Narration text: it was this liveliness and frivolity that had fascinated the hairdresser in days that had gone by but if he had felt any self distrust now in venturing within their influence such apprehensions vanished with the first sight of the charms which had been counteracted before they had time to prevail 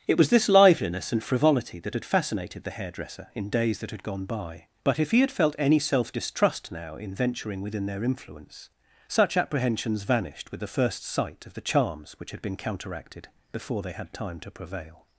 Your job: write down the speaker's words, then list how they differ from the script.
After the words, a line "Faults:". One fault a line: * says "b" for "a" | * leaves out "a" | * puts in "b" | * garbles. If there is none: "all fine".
it was this liveliness and frivolity that had fascinated the hairdresser in days that had gone by but if he had felt any self distrust now in venturing within their influence such apprehensions vanished with the first sight of the charms which had been counteracted before they had time to prevail
Faults:
all fine